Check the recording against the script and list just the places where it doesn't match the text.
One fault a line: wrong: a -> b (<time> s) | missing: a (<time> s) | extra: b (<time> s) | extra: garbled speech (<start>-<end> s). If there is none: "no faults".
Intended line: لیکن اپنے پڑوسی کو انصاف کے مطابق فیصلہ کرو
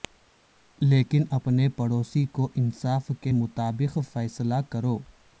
no faults